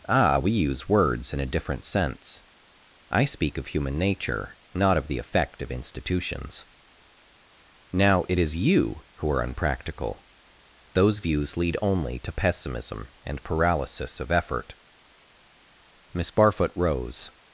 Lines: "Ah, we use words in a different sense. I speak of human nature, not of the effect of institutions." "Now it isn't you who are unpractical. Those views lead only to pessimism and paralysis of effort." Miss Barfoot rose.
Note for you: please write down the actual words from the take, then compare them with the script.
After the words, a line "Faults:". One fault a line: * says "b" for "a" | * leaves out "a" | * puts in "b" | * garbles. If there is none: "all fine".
"Ah, we use words in a different sense. I speak of human nature, not of the effect of institutions." "Now it is you who are unpractical. Those views lead only to pessimism and paralysis of effort." Miss Barfoot rose.
Faults:
* says "is" for "isn't"